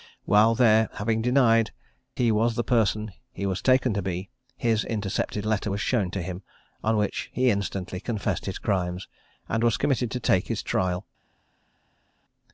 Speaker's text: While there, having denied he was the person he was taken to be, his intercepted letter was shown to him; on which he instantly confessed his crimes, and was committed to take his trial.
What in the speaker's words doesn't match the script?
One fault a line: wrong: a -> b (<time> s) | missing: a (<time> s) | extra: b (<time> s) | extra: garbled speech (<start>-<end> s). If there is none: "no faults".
no faults